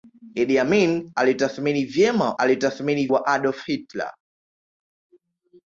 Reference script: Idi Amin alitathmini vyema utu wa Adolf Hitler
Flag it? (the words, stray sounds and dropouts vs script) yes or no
yes